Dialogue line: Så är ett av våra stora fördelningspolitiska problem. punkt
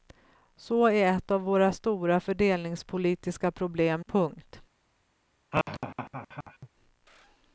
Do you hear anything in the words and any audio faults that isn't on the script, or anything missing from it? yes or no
yes